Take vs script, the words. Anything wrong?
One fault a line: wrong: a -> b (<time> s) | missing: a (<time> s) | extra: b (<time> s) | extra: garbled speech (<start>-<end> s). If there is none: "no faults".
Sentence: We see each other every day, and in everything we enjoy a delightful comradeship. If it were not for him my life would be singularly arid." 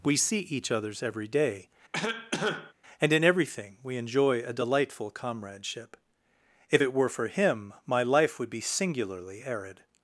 wrong: other -> others (0.7 s)
missing: not (7.1 s)